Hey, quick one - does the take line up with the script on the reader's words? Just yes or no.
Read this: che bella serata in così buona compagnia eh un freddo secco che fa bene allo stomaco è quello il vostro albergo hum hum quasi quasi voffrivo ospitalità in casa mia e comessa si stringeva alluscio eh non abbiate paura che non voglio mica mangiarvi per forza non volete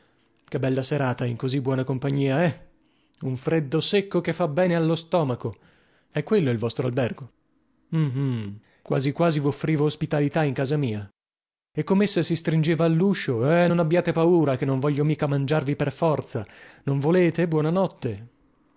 yes